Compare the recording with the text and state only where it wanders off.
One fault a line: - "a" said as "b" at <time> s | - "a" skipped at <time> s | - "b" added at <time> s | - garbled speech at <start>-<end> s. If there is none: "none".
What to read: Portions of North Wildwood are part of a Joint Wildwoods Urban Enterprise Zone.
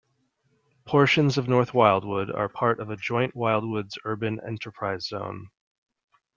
none